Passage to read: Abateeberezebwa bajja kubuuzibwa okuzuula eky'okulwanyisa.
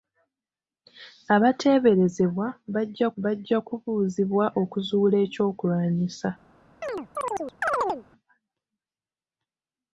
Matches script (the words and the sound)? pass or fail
fail